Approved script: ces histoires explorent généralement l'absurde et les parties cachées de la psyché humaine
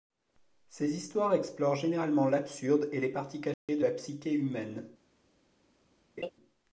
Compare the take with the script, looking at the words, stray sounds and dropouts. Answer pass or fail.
fail